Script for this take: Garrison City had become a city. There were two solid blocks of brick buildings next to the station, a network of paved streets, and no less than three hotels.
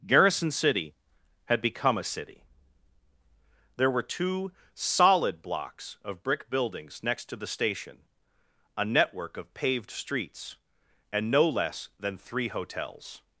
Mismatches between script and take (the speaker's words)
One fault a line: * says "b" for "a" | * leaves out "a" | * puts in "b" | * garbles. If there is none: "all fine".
all fine